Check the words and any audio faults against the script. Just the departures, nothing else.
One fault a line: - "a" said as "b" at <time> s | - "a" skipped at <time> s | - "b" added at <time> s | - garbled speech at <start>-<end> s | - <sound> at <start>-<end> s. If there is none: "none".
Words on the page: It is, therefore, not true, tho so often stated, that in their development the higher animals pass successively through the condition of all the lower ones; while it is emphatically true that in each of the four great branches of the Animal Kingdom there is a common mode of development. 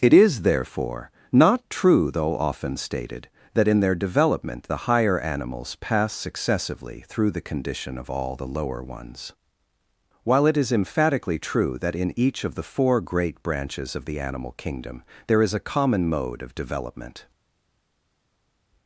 - "tho so" said as "though" at 2.1 s